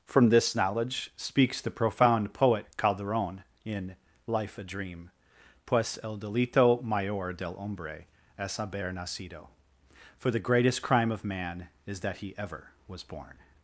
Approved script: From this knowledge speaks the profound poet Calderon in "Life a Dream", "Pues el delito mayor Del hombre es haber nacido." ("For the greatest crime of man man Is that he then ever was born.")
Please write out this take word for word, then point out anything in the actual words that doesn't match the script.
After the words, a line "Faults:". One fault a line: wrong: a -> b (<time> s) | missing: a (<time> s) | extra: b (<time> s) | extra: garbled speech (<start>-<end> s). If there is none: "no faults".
From this knowledge speaks the profound poet Calderon in "Life a Dream", "Pues el delito mayor Del hombre es haber nacido." ("For the greatest crime of man Is that he ever was born.")
Faults:
missing: man (11.7 s)
missing: then (12.3 s)